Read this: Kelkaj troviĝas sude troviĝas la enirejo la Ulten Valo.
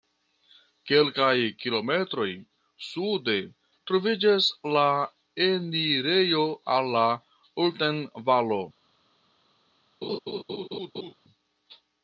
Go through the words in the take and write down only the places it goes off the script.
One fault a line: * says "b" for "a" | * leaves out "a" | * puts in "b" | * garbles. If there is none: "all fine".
* says "kilometroj" for "troviĝas"
* puts in "al"